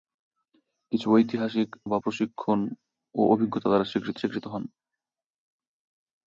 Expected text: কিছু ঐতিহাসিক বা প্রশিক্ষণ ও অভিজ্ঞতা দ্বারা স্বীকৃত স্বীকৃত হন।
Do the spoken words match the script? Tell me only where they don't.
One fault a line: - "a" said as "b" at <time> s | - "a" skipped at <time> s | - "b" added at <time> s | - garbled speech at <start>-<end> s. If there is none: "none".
none